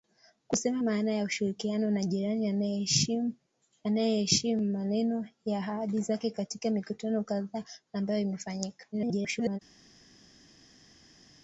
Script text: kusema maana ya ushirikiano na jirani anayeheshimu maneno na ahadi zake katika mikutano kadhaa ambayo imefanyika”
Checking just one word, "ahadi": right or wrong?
right